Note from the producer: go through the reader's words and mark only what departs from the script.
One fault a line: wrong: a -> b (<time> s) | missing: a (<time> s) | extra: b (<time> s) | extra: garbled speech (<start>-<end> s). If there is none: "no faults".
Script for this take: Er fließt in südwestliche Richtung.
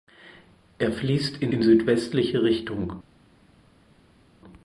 extra: in (1.5 s)